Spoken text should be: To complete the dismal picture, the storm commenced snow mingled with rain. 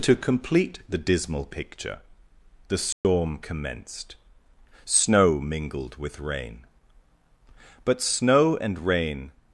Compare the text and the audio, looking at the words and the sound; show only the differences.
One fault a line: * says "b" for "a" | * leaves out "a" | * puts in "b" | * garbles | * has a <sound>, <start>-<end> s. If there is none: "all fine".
* has a dropout, 2.9-3.0 s
* puts in "But snow and rain"